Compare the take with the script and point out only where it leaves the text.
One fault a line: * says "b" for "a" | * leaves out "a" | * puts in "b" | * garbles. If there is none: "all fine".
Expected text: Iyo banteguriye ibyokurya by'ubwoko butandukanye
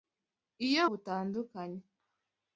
* leaves out "banteguriye ibyokurya by'ubwoko"